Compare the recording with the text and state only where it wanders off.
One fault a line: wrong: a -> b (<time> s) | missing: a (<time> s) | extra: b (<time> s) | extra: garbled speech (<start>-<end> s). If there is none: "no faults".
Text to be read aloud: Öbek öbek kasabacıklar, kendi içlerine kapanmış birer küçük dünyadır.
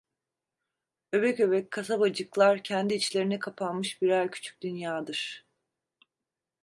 no faults